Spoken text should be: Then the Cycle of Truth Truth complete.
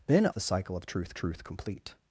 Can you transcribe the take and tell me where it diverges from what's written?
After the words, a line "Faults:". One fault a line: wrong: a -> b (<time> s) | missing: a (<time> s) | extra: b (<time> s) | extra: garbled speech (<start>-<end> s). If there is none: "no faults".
Then the Cycle of Truth Truth complete.
Faults:
no faults